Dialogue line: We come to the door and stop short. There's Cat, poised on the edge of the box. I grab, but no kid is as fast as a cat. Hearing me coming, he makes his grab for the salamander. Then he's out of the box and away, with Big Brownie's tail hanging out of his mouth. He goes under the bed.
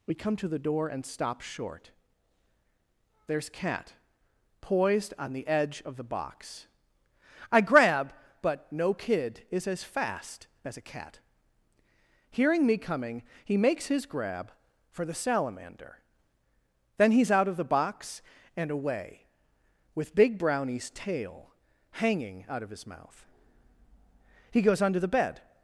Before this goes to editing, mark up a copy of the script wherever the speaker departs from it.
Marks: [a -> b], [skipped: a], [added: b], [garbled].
We come to the door and stop short. There's Cat, poised on the edge of the box. I grab, but no kid is as fast as a cat. Hearing me coming, he makes his grab for the salamander. Then he's out of the box and away, with Big Brownie's tail hanging out of his mouth. He goes under the bed.